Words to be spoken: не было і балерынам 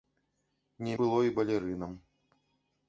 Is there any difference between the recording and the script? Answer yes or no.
no